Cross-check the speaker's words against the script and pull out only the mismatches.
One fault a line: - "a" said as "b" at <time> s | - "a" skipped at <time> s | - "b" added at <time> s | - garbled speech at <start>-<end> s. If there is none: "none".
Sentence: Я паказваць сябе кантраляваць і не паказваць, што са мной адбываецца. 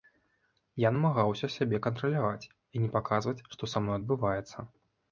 - "паказваць" said as "намагаўся" at 0.9 s